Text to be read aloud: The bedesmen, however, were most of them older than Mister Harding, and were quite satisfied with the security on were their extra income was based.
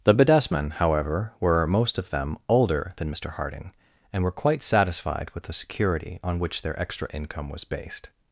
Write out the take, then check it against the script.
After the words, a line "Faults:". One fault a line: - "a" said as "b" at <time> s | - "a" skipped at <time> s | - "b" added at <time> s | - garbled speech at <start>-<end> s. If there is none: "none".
The bedesmen, however, were most of them older than Mister Harding, and were quite satisfied with the security on which their extra income was based.
Faults:
- "were" said as "which" at 6.4 s